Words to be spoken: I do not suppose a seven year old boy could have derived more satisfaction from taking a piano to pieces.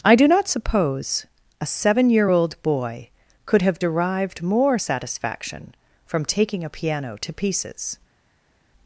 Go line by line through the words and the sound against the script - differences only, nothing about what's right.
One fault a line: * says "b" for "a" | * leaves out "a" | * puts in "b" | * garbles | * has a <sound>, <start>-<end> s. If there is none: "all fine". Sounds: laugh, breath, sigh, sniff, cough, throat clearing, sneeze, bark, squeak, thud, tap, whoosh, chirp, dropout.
all fine